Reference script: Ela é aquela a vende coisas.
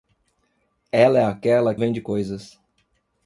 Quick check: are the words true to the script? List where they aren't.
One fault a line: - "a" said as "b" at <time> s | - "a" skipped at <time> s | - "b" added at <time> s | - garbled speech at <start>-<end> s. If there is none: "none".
none